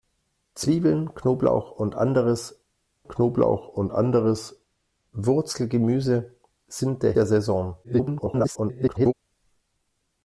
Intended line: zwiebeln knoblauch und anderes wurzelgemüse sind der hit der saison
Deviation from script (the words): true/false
true